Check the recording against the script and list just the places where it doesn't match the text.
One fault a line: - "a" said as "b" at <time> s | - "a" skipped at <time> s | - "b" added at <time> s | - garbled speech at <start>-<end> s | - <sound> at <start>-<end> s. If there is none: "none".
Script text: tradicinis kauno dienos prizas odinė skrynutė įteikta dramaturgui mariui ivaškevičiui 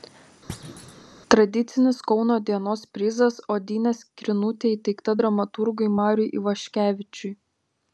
- thud at 0.5-1.0 s